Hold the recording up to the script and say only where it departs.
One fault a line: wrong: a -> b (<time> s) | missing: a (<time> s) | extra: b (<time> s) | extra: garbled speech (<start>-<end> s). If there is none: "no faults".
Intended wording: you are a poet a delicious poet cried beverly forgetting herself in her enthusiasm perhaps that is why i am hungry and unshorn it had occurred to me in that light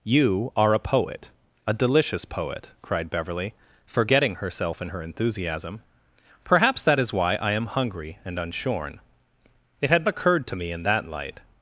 no faults